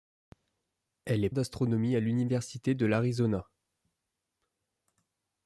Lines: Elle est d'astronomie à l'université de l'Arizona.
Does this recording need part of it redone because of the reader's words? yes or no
no